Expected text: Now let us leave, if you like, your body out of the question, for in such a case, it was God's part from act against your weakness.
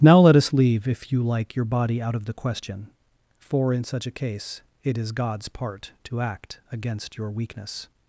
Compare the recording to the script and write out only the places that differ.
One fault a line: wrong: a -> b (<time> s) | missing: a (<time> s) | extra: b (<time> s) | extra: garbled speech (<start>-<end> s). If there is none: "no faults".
wrong: was -> is (5.0 s)
wrong: from -> to (6.0 s)